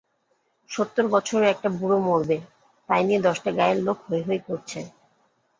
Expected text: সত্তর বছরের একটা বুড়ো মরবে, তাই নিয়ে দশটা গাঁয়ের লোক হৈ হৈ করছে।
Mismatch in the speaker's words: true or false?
false